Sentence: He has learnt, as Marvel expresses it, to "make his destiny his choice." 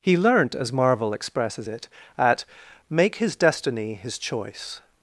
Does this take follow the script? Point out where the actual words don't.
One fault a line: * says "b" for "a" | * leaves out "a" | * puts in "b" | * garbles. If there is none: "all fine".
* leaves out "has"
* says "at" for "to"